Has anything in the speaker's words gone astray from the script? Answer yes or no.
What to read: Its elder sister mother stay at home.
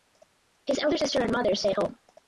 yes